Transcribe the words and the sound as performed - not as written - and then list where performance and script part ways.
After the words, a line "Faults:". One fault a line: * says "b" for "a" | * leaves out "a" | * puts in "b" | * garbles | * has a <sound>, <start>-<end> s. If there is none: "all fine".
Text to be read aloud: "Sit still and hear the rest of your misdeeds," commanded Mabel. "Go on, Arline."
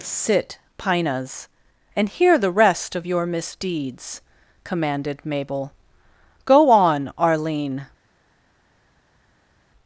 "Sit pinas and hear the rest of your misdeeds," commanded Mabel. "Go on, Arline."
Faults:
* says "pinas" for "still"